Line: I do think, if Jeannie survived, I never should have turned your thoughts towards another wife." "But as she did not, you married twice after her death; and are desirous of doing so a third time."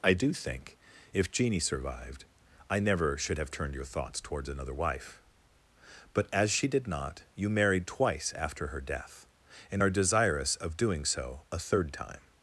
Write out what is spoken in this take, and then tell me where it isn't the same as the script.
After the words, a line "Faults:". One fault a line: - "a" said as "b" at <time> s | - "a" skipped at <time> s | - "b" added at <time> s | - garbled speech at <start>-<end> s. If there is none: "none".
I do think, if Jeannie survived, I never should have turned your thoughts towards another wife." "But as she did not, you married twice after her death; and are desirous of doing so a third time."
Faults:
none